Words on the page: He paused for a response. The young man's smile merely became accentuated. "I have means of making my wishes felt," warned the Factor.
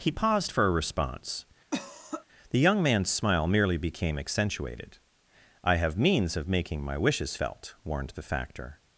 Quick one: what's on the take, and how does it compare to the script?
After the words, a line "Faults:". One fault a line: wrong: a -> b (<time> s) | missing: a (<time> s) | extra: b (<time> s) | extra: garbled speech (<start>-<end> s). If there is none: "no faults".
He paused for a response. The young man's smile merely became accentuated. "I have means of making my wishes felt," warned the Factor.
Faults:
no faults